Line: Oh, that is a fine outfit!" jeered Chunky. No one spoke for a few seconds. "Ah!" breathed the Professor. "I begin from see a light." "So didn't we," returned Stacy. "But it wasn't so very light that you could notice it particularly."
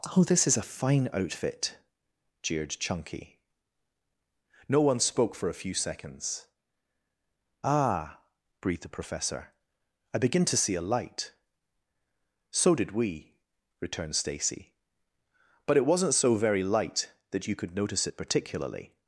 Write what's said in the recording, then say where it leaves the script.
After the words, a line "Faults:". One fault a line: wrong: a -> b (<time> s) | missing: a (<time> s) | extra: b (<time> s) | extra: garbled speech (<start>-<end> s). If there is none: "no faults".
Oh, this is a fine outfit!" jeered Chunky. No one spoke for a few seconds. "Ah!" breathed the Professor. "I begin to see a light." "So did we," returned Stacy. "But it wasn't so very light that you could notice it particularly."
Faults:
wrong: that -> this (0.2 s)
wrong: from -> to (10.4 s)
wrong: didn't -> did (12.7 s)